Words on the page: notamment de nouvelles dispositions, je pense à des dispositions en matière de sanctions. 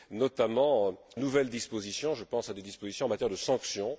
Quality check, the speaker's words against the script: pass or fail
fail